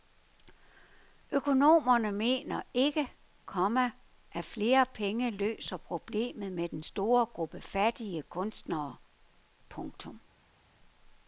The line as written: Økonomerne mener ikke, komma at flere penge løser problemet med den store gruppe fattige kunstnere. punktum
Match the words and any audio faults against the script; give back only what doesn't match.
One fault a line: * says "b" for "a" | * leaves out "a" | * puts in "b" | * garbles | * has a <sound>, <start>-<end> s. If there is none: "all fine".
all fine